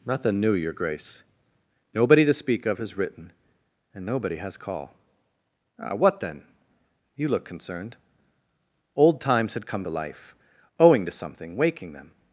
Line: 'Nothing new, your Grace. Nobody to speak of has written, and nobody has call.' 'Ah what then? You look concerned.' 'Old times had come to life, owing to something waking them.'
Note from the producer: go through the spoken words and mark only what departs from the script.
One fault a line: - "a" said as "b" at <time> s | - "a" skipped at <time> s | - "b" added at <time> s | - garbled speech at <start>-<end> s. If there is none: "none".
none